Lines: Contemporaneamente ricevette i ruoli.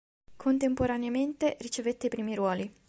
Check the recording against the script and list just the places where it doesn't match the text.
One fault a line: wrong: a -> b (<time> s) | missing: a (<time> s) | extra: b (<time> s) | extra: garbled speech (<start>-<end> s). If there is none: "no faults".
extra: primi (2.1 s)